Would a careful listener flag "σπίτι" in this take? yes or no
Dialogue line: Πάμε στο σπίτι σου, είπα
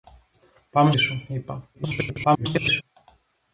yes